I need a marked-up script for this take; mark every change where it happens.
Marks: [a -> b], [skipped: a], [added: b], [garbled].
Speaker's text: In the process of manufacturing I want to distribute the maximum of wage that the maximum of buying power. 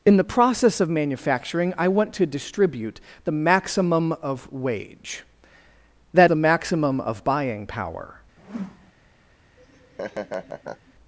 In the process of manufacturing I want to distribute the maximum of wage that the maximum of buying power.